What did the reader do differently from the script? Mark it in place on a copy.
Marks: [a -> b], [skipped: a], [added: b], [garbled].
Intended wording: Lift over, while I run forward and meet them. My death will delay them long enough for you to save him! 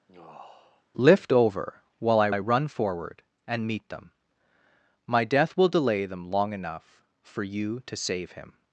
Lift over, while I [added: I] run forward and meet them. My death will delay them long enough for you to save him!